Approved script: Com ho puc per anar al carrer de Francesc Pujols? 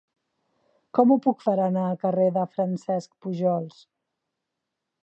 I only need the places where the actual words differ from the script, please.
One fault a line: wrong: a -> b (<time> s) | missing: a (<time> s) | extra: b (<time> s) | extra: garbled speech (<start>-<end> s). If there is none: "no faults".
no faults